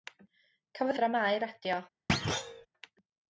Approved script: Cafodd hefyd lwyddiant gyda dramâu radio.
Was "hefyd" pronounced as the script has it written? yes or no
no